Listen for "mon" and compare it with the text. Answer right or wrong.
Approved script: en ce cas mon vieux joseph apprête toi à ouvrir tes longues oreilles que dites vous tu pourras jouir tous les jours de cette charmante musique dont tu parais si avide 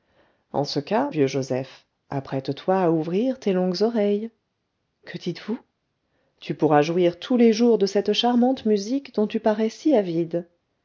wrong